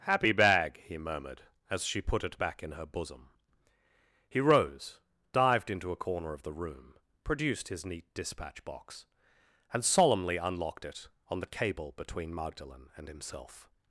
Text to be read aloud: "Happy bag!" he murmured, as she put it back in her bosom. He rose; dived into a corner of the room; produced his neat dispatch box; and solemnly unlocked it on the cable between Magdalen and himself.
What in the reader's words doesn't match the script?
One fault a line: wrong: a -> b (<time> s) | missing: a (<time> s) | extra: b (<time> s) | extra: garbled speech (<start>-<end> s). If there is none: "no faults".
no faults